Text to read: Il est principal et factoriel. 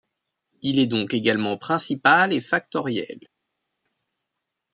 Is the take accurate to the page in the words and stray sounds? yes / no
no